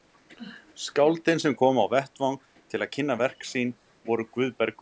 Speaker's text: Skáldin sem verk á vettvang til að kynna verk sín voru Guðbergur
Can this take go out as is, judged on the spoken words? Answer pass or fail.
fail